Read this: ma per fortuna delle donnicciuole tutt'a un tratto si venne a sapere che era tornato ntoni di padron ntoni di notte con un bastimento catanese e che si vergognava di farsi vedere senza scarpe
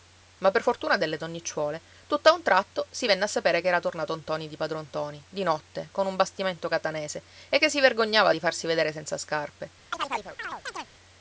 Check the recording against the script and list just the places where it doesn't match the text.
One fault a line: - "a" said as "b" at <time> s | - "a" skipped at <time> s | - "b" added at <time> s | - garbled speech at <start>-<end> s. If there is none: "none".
none